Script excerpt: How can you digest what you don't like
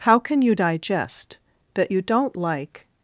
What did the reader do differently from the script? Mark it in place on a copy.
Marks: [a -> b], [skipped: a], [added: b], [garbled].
How can you digest [what -> that] you don't like